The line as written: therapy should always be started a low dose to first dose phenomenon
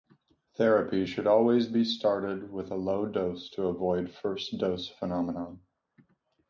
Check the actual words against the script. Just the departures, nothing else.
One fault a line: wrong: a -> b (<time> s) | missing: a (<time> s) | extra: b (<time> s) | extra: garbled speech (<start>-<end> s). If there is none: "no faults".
extra: with (2.5 s)
extra: avoid (3.6 s)